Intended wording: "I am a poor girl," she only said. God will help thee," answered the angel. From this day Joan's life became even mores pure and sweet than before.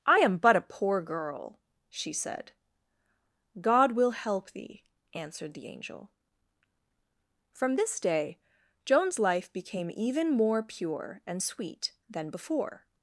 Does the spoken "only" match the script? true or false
false